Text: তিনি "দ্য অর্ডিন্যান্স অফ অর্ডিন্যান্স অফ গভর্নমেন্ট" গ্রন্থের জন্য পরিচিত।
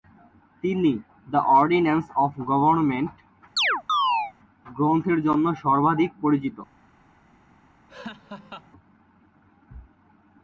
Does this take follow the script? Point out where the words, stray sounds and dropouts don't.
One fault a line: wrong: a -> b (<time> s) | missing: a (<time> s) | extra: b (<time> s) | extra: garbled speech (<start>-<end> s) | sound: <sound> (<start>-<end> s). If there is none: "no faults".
missing: অর্ডিন্যান্স অফ (2.3 s)
sound: chirp (3.6-4.3 s)
extra: সর্বাধিক (5.6 s)
sound: laugh (7.9-8.7 s)